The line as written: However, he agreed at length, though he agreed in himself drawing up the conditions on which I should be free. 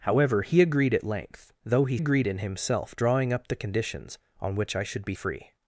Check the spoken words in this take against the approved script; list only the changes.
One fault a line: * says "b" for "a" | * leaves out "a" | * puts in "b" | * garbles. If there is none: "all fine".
all fine